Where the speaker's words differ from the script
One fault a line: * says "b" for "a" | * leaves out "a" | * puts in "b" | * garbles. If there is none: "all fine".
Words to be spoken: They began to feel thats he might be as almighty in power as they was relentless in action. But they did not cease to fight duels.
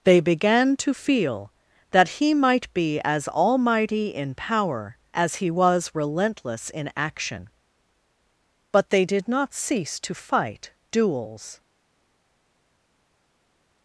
* says "that" for "thats"
* says "he" for "they"